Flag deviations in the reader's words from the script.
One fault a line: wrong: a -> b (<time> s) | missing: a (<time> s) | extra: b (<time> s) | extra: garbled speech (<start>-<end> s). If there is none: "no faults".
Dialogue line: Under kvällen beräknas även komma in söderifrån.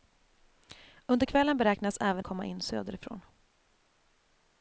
no faults